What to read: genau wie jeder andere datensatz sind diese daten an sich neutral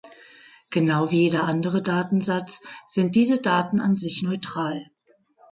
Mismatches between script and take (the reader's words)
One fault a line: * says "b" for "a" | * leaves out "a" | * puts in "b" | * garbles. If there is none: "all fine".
all fine